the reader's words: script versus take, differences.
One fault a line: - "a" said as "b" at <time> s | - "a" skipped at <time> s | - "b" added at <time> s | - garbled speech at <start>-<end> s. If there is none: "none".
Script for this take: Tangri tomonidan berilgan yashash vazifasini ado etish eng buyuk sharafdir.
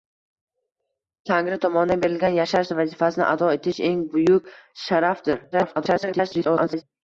- garbled speech at 5.5-6.8 s